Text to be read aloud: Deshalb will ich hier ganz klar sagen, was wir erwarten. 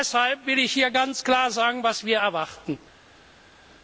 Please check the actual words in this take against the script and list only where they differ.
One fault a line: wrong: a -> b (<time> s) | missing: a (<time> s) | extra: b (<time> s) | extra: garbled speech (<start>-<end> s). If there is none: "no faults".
no faults